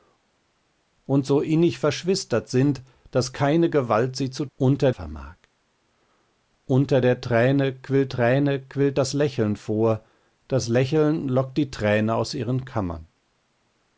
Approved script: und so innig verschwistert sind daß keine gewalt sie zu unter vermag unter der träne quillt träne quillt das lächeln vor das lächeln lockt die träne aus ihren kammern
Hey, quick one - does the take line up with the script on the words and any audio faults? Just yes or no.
yes